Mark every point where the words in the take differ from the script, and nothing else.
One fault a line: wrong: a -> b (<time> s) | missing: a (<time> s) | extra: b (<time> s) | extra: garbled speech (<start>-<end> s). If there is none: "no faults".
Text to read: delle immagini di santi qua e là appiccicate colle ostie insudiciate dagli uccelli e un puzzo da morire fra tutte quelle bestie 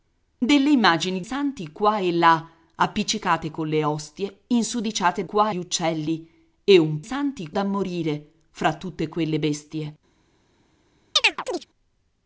missing: di (1.2 s)
wrong: dagli -> qua (5.2 s)
wrong: puzzo -> santi (7.0 s)